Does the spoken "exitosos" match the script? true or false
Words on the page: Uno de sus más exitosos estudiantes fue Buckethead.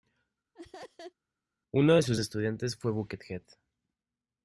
false